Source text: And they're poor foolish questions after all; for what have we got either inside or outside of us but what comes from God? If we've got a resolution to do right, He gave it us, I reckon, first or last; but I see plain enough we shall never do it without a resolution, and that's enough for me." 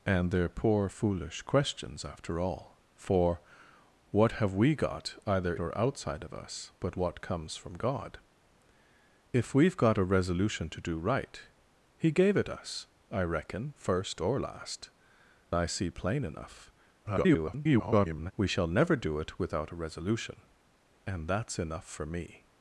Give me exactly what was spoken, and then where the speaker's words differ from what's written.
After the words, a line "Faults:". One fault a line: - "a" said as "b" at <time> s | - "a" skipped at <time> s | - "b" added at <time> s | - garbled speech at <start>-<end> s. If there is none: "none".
And they're poor foolish questions after all; for what have we got either or outside of us but what comes from God? If we've got a resolution to do right, He gave it us, I reckon, first or last; I see plain enough [garbled] we shall never do it without a resolution, and that's enough for me."
Faults:
- "inside" skipped at 5.5 s
- "but" skipped at 14.9 s
- garbled speech at 17.0-18.3 s